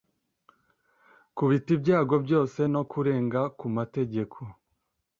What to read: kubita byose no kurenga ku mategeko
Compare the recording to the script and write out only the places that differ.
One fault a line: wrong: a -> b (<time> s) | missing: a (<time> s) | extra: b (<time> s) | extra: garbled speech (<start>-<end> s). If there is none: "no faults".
extra: ibyago (1.8 s)